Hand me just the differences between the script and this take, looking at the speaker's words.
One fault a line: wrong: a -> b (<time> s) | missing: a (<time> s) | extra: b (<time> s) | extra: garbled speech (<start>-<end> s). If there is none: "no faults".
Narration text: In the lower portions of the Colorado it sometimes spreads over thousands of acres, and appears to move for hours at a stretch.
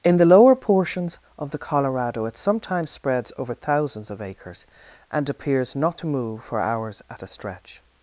extra: not (5.8 s)